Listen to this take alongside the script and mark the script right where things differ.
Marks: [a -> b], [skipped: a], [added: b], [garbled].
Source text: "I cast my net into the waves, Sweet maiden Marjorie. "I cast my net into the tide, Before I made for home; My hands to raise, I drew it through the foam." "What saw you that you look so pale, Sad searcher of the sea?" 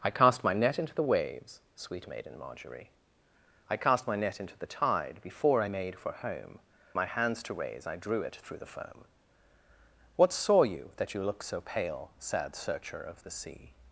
"I cast my net into the waves, Sweet maiden Marjorie. "I cast my net into the tide, Before I made for home; My hands to raise, I drew it through the foam." "What saw you that you look so pale, Sad searcher of the sea?"